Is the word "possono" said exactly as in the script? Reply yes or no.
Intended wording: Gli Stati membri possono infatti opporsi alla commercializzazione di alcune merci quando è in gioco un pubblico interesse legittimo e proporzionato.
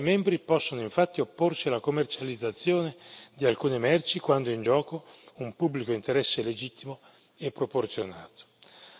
yes